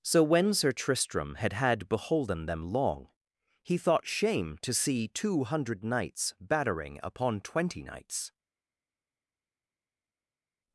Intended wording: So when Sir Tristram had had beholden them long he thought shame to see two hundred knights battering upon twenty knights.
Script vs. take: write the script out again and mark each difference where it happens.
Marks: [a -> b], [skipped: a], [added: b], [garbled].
So when Sir Tristram had had beholden them long he thought shame to see two hundred knights battering upon twenty knights.